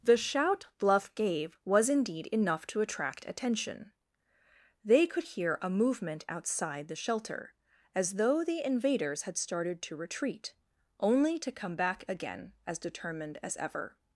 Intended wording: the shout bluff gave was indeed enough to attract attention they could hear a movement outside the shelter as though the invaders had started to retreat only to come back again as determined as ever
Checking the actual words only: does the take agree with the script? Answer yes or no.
yes